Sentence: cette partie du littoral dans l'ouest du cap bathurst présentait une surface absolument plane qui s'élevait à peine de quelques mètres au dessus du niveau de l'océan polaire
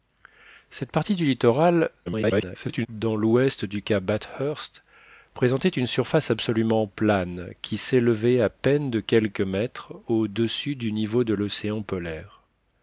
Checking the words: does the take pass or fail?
fail